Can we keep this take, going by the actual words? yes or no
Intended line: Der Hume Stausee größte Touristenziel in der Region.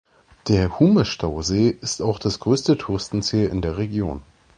no